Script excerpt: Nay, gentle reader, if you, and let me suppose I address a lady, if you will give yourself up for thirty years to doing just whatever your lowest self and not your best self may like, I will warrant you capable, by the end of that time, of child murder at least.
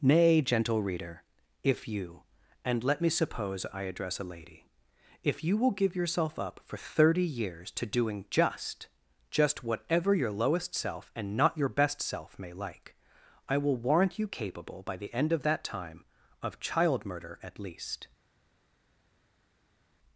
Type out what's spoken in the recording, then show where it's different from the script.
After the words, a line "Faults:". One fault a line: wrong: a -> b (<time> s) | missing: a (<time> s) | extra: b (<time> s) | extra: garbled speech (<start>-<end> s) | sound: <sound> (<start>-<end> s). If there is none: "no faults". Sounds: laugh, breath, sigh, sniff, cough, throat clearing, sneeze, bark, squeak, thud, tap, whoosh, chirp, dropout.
Nay, gentle reader, if you, and let me suppose I address a lady, if you will give yourself up for thirty years to doing just just whatever your lowest self and not your best self may like, I will warrant you capable, by the end of that time, of child murder at least.
Faults:
extra: just (9.3 s)